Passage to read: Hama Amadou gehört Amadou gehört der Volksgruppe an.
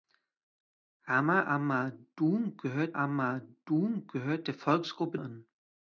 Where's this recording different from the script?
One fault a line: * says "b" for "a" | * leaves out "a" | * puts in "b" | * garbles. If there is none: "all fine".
all fine